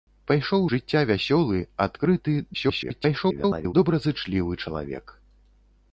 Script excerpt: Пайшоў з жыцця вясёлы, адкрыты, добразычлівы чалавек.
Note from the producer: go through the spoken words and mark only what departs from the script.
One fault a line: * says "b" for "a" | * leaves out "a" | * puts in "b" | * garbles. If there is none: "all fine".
* leaves out "з"
* garbles